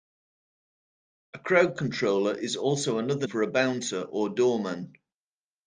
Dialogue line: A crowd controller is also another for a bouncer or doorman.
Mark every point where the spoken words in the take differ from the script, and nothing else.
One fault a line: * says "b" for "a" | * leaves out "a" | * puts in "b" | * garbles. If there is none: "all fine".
all fine